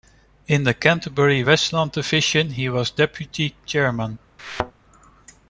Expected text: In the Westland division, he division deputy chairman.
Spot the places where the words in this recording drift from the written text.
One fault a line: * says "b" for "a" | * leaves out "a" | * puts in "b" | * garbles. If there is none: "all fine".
* puts in "Canterbury"
* says "was" for "division"